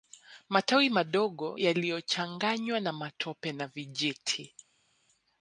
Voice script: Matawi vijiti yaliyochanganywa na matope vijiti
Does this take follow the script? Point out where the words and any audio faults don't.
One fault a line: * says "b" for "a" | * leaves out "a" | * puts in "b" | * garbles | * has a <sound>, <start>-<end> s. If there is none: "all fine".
* says "madogo" for "vijiti"
* puts in "na"